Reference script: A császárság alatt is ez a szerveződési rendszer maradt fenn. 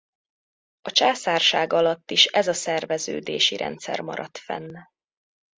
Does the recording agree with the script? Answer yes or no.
yes